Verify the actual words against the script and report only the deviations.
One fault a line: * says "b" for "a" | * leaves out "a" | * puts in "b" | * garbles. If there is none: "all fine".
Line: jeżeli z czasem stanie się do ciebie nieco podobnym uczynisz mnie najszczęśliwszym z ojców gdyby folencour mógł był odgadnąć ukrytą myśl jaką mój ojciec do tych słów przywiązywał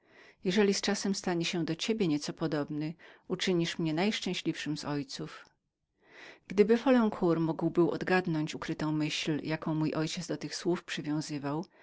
all fine